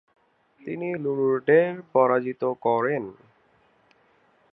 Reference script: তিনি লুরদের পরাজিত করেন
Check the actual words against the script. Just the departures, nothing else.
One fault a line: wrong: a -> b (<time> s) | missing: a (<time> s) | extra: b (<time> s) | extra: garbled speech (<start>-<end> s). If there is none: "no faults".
no faults